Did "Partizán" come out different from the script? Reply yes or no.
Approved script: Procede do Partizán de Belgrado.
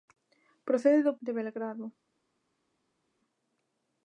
yes